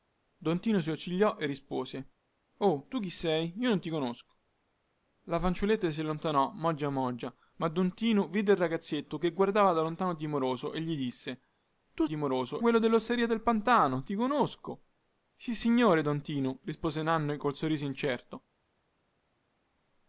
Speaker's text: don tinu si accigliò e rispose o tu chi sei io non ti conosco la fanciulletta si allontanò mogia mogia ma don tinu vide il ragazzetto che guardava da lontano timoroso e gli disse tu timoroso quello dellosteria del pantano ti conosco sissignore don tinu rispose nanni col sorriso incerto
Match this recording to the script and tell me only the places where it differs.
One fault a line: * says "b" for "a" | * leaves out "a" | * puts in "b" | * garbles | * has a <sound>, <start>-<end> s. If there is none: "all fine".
all fine